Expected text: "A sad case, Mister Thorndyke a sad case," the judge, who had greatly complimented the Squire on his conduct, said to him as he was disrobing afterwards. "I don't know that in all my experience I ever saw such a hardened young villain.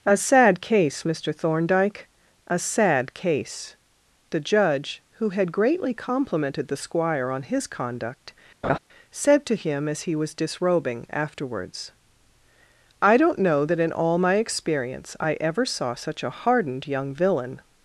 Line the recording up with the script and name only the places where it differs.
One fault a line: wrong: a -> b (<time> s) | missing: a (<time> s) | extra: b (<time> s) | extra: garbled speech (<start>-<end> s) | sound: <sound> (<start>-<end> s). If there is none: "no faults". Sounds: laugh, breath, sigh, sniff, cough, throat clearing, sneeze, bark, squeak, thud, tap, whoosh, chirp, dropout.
sound: laugh (8.6-8.8 s)